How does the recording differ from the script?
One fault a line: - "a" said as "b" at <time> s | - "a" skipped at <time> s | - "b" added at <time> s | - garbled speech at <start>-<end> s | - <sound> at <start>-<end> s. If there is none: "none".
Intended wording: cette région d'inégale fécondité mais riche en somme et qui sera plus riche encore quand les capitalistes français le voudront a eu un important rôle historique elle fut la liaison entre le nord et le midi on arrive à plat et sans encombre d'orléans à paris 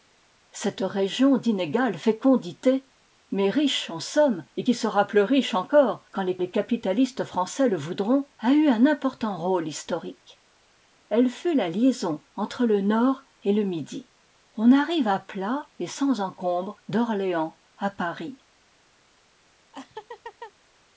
- "les" added at 6.4 s
- laugh at 19.7-20.5 s